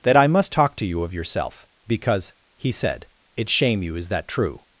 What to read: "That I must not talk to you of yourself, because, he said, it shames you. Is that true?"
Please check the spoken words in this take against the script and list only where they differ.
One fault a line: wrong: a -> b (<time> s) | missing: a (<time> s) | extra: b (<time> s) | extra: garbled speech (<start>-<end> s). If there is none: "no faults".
missing: not (0.5 s)
wrong: shames -> shame (3.5 s)